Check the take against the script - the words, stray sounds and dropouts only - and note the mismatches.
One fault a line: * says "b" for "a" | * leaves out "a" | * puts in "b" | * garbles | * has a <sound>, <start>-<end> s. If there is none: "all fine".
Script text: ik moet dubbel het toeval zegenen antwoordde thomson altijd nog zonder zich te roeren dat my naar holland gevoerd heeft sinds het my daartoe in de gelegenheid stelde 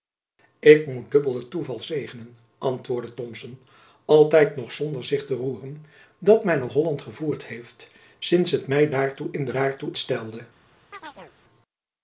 * says "daartoe" for "gelegenheid"
* has a chirp, 10.9-11.3 s